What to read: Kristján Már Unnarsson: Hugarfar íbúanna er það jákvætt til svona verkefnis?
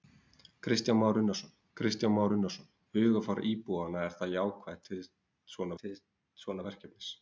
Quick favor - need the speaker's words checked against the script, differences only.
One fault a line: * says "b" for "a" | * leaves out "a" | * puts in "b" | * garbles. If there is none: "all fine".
* puts in "kristján Már Unnarsson"
* puts in "til svona"